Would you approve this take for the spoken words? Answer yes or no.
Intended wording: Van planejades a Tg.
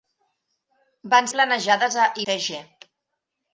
yes